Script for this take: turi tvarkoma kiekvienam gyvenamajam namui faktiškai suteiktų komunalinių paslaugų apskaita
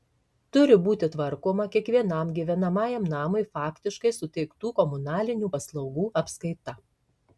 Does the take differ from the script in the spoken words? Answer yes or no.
yes